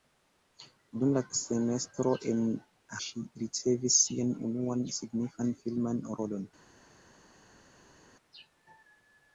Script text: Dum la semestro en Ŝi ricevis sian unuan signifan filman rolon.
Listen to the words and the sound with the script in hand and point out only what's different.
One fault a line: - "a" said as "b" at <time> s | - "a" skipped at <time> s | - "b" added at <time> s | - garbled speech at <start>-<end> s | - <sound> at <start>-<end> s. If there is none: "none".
none